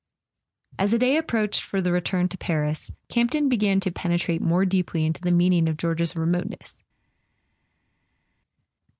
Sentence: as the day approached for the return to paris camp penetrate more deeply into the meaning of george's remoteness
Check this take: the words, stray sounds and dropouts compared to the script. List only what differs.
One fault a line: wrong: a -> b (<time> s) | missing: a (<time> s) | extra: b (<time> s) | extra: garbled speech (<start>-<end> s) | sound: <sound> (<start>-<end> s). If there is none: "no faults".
extra: ton began to (3.3 s)